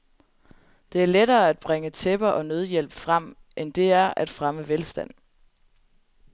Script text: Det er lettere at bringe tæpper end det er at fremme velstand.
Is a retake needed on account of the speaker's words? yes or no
yes